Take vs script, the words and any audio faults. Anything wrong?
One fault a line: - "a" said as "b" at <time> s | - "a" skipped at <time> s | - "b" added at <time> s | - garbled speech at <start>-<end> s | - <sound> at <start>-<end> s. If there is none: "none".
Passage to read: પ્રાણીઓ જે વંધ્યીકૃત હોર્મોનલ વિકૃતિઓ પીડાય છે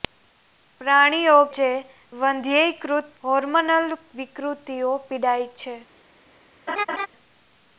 - laugh at 6.7-7.1 s